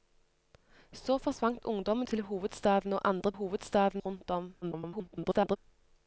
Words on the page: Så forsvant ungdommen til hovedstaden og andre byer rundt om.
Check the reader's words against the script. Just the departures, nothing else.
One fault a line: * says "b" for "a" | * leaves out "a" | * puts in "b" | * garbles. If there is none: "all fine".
* says "hovedstaden" for "byer"
* garbles